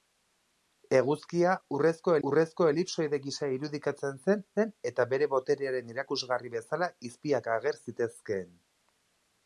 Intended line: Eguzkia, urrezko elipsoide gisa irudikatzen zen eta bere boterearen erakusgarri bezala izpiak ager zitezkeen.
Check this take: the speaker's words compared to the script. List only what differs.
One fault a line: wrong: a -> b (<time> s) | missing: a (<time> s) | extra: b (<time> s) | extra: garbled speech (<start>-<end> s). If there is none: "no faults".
extra: urrezko (2.3 s)
extra: zen (4.6 s)